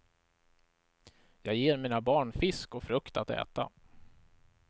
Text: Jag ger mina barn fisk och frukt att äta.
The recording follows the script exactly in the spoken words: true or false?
true